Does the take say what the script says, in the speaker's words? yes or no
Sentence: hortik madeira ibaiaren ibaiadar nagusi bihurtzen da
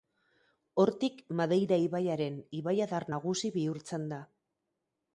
yes